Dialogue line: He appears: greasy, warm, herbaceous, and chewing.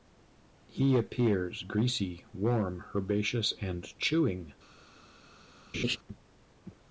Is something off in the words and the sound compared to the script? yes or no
yes